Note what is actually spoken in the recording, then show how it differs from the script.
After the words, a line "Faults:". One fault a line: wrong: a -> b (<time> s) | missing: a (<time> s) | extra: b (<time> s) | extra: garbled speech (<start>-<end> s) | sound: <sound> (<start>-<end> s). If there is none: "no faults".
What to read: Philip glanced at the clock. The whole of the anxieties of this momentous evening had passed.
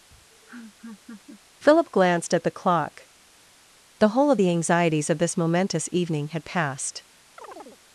Philip glanced at the clock. The whole of the anxieties of this momentous evening had passed.
Faults:
sound: laugh (0.1-1.4 s)
sound: chirp (7.4-7.8 s)